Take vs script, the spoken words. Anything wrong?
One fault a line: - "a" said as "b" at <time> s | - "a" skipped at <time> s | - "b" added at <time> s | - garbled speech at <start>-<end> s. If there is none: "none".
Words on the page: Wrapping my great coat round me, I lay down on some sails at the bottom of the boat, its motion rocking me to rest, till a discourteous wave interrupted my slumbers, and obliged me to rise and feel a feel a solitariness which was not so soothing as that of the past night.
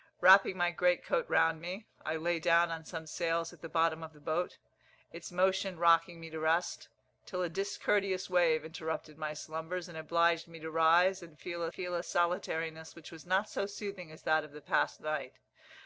none